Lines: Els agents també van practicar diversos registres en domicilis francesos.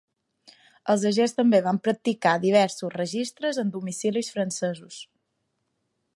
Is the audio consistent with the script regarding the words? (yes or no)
yes